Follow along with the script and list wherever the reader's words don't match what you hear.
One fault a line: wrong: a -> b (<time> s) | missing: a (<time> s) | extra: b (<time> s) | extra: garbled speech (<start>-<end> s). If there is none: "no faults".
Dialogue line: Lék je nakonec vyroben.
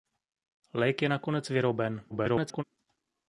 extra: garbled speech (2.1-2.6 s)